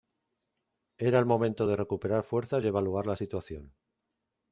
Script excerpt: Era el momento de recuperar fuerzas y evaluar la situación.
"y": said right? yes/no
yes